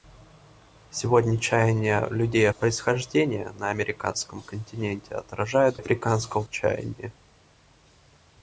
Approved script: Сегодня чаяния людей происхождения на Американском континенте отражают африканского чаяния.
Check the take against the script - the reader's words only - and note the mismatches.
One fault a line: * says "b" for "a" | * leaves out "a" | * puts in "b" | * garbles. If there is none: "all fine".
all fine